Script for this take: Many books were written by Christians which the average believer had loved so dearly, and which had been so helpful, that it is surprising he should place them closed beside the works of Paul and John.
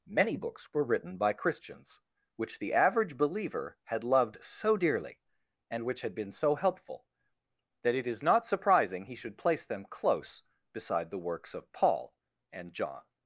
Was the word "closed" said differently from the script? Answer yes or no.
yes